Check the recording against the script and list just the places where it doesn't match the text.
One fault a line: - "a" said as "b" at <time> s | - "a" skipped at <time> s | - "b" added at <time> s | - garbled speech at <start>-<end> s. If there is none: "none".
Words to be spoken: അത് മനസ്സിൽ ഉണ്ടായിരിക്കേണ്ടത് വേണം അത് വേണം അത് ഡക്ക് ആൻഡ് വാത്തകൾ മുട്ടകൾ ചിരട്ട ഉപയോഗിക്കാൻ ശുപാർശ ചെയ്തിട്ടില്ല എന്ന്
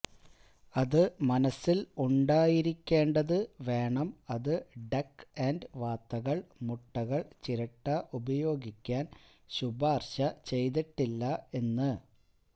- "വേണം അത്" skipped at 4.5 s